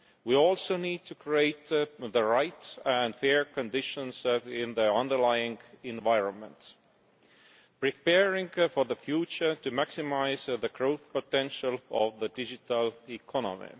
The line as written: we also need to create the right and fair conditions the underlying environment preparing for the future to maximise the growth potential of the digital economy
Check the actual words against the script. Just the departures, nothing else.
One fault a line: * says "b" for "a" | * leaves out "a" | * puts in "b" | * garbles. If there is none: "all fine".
* puts in "in"